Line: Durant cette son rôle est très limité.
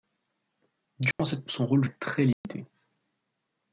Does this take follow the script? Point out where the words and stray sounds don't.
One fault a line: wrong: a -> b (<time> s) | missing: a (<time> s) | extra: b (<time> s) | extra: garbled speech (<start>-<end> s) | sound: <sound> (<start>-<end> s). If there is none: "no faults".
sound: dropout (1.1-1.2 s)
sound: dropout (2.3-2.4 s)